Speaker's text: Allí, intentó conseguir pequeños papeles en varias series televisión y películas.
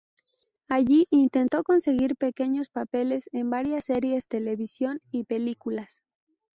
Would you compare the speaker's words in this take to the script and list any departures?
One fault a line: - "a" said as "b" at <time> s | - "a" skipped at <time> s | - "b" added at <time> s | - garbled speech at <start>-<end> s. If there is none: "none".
none